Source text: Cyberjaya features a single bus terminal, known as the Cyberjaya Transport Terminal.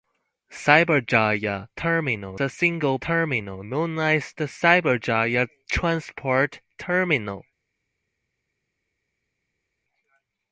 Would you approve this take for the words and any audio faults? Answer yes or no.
no